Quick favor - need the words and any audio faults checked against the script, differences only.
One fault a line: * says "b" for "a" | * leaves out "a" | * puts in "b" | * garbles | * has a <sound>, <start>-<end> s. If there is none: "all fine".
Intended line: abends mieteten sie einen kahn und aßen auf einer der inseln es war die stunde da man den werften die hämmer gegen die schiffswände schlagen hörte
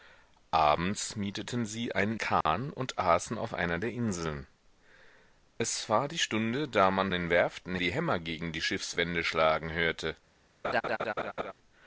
* has a dropout, 2.4-2.5 s
* has a laugh, 10.6-11.5 s